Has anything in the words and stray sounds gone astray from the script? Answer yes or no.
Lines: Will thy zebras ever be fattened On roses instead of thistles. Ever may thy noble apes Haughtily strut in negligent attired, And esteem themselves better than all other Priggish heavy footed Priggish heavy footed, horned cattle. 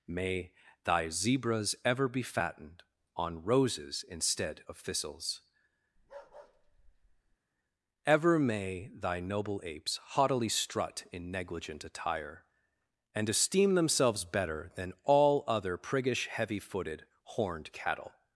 yes